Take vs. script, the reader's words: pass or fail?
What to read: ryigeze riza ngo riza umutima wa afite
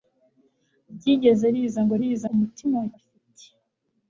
pass